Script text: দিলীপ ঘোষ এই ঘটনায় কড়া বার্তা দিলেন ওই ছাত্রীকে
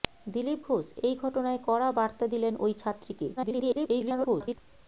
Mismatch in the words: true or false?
true